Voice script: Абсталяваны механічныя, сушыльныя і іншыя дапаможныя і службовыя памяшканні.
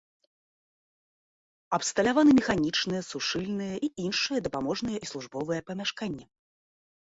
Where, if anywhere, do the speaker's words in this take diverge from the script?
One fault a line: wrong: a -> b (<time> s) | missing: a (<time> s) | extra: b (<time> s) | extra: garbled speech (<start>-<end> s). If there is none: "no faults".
no faults